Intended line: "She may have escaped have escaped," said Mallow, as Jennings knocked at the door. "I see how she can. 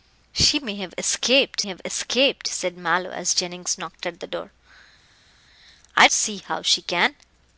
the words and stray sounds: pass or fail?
pass